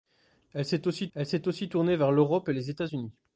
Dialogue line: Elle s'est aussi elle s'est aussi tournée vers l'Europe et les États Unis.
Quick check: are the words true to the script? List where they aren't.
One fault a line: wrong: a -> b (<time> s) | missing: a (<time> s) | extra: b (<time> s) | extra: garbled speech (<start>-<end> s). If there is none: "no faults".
no faults